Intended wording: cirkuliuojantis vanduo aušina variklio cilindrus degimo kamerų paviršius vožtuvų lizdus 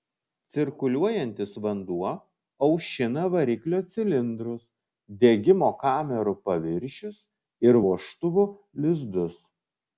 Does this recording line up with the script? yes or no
no